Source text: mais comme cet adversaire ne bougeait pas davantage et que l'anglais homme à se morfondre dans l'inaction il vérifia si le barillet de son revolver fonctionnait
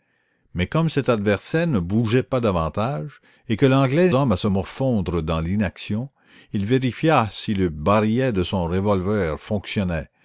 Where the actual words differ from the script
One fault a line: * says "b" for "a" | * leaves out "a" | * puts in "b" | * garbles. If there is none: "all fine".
all fine